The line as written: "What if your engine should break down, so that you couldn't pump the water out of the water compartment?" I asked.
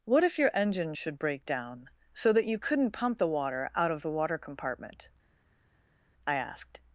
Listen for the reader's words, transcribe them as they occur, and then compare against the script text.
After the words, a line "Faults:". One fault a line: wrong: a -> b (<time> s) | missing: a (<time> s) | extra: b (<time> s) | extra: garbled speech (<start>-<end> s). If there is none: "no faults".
"What if your engine should break down, so that you couldn't pump the water out of the water compartment?" I asked.
Faults:
no faults